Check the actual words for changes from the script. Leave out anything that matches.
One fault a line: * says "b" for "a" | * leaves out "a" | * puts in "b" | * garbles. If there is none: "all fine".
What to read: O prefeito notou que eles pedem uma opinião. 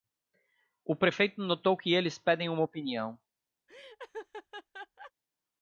all fine